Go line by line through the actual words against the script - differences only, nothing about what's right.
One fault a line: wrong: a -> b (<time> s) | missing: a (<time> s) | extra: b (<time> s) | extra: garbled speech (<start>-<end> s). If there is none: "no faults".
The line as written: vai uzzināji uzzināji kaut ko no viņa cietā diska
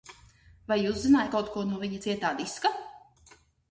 missing: uzzināji (1.3 s)